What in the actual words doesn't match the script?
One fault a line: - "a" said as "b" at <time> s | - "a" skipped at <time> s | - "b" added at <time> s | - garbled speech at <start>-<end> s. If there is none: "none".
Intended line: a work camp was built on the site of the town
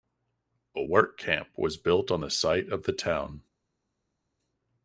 none